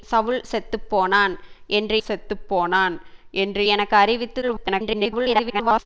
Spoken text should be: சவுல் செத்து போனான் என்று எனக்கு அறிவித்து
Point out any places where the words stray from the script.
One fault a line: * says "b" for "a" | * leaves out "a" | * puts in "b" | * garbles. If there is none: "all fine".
* puts in "செத்து போனான் என்று"
* garbles